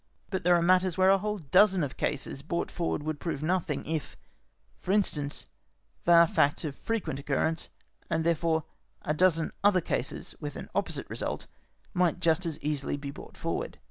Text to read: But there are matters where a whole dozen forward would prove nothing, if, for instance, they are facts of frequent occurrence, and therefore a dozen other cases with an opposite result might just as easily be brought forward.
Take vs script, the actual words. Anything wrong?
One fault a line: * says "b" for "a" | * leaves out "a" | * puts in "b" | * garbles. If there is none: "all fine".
* puts in "of cases brought"